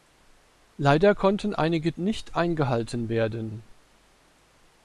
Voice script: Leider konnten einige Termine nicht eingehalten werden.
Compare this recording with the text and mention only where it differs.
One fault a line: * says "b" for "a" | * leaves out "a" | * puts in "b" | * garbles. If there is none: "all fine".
* leaves out "Termine"